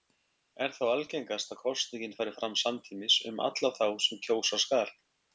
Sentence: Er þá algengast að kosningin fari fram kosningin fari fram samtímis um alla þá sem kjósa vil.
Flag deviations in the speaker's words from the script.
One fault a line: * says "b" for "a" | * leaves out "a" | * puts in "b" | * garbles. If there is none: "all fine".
* leaves out "kosningin fari fram"
* says "skal" for "vil"